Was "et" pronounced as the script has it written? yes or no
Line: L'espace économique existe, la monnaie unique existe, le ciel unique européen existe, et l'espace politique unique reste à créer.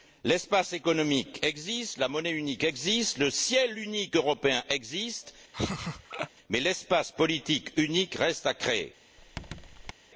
no